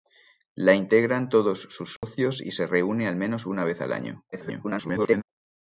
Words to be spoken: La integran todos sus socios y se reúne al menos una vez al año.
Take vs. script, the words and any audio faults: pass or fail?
fail